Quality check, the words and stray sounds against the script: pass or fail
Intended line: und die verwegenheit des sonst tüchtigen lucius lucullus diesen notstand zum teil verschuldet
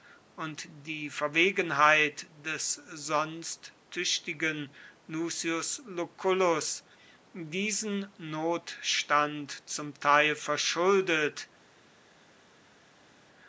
pass